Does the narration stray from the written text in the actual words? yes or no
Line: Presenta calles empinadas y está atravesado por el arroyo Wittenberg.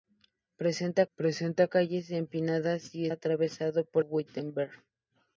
yes